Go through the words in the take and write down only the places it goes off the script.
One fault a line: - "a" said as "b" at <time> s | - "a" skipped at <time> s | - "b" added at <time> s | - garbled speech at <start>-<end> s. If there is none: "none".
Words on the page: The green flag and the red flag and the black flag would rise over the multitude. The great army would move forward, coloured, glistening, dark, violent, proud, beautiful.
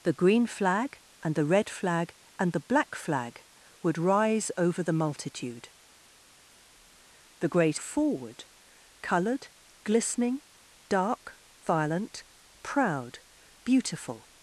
- "army would move" skipped at 7.8 s